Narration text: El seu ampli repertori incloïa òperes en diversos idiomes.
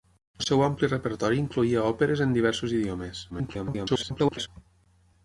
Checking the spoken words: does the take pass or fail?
fail